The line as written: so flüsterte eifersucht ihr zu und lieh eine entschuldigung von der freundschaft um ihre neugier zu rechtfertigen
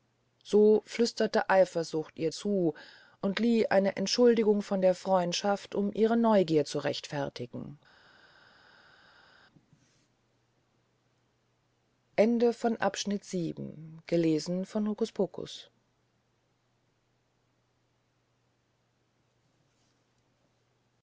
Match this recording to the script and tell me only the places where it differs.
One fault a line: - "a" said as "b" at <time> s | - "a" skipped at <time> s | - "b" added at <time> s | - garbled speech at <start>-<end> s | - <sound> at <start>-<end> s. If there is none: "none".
none